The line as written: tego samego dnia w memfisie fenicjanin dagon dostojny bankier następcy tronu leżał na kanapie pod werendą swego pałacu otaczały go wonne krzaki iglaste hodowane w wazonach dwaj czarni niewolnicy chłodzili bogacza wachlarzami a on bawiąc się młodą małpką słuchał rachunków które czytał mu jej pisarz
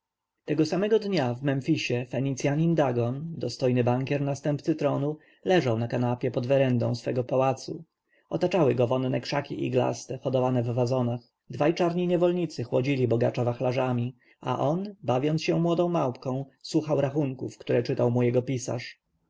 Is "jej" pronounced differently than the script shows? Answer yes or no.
yes